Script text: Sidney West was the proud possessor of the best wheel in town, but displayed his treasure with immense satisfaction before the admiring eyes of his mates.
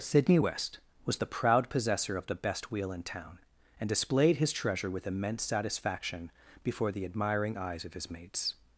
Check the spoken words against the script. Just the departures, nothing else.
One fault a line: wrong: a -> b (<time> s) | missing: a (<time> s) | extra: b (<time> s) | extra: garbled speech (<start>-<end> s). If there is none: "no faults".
wrong: but -> and (3.8 s)